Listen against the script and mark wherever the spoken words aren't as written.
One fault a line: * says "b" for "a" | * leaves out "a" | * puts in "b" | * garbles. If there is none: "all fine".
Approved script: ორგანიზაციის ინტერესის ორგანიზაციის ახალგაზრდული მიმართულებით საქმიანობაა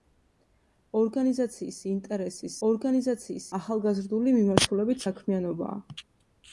all fine